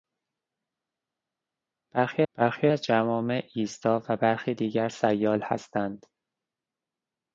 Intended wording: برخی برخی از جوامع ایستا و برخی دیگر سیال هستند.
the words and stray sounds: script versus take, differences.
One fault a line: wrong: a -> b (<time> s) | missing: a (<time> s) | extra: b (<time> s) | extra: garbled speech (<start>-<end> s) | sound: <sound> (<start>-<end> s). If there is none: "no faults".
no faults